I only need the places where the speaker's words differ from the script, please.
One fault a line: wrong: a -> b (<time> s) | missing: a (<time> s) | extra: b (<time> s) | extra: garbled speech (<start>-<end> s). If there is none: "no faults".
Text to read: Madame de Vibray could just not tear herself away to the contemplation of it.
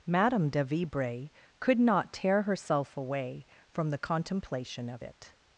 missing: just (1.8 s)
wrong: to -> from (3.7 s)